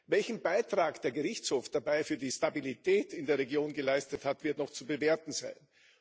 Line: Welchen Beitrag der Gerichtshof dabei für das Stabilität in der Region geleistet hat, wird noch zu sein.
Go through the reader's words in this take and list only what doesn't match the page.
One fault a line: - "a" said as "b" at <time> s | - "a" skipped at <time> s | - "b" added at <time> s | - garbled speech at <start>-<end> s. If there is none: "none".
- "das" said as "die" at 2.2 s
- "bewerten" added at 4.9 s